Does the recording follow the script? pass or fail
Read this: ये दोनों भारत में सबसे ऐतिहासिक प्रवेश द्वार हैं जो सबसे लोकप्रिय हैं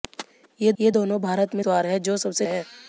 fail